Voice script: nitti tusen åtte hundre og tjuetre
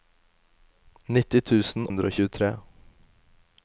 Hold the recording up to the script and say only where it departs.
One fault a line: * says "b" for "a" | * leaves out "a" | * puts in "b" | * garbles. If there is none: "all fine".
* leaves out "åtte"